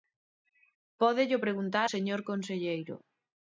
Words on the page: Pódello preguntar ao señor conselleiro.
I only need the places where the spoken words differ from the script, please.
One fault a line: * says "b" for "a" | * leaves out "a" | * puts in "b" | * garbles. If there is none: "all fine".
* leaves out "ao"